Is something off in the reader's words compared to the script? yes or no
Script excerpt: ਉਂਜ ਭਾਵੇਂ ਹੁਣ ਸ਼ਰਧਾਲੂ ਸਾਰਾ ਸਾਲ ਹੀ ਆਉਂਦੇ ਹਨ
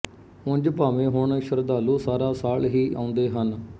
no